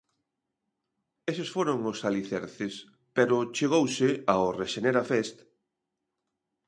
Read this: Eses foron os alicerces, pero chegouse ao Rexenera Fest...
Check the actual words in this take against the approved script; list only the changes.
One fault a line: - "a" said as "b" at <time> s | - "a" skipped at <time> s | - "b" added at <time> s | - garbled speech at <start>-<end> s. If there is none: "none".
none